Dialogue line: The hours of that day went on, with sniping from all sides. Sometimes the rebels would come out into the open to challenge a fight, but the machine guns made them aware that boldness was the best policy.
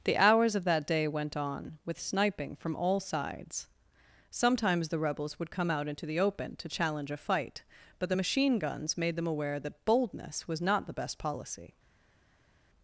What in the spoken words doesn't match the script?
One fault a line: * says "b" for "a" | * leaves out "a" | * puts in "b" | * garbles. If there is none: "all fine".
* puts in "not"